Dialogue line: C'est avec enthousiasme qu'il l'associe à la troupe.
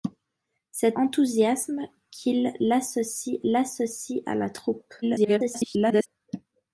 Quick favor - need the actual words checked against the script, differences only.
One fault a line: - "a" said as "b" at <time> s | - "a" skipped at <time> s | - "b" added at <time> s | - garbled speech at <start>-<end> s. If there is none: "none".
- "avec" skipped at 1.0 s
- "l'associe" added at 3.4 s
- garbled speech at 5.0-6.1 s